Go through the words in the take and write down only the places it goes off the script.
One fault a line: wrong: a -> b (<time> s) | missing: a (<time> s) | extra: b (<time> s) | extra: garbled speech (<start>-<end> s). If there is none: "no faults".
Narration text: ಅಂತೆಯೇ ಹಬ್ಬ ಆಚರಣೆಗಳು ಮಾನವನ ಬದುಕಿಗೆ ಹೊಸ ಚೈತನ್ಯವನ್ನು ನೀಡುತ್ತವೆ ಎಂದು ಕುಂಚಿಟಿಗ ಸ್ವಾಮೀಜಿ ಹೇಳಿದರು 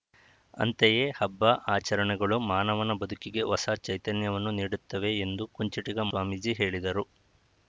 no faults